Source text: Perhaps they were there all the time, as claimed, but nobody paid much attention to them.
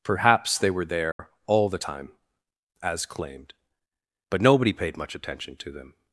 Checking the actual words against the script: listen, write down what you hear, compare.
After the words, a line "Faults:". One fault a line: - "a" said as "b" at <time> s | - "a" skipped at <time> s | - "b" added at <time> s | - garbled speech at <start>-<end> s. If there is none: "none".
Perhaps they were there all the time, as claimed, but nobody paid much attention to them.
Faults:
none